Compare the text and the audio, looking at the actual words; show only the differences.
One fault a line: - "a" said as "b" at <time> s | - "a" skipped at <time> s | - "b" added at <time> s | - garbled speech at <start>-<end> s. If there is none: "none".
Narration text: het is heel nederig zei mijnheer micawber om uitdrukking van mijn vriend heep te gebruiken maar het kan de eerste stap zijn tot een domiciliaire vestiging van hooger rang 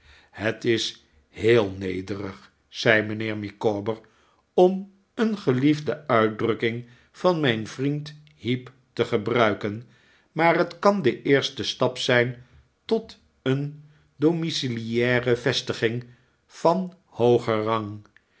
- "een gelie'fde" added at 5.2 s